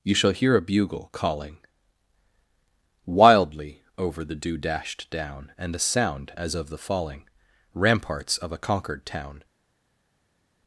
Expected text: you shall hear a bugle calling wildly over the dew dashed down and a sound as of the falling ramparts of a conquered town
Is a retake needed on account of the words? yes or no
no